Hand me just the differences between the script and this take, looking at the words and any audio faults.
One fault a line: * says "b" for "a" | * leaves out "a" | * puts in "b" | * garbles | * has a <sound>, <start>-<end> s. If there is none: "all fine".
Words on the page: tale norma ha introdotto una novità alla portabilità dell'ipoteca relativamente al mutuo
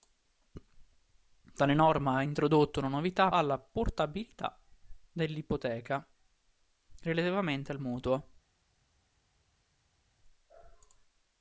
all fine